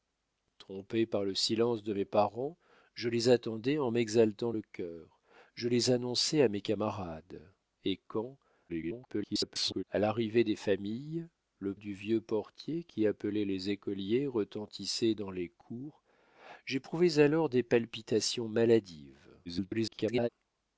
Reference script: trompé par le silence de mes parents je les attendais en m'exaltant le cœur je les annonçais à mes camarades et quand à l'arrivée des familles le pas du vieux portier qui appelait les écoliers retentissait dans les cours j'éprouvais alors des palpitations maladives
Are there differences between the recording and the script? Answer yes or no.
yes